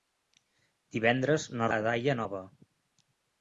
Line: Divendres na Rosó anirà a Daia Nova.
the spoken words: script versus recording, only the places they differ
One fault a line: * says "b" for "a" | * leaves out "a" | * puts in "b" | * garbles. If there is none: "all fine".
* leaves out "Rosó anirà"